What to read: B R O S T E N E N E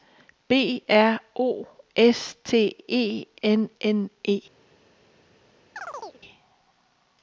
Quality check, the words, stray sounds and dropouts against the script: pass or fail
fail